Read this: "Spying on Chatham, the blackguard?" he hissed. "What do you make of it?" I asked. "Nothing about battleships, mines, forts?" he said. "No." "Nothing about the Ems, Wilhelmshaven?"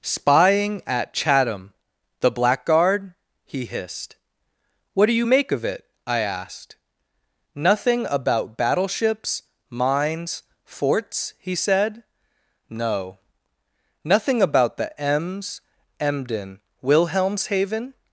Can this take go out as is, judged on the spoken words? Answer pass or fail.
fail